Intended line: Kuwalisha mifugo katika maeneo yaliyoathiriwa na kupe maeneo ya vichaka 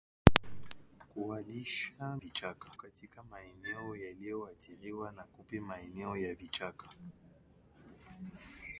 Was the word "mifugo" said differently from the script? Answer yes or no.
yes